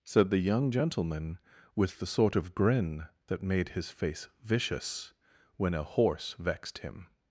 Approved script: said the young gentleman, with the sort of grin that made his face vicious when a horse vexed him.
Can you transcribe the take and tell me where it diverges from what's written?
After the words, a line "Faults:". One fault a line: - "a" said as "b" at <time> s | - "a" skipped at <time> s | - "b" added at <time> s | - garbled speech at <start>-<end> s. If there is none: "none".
said the young gentleman, with the sort of grin that made his face vicious when a horse vexed him.
Faults:
none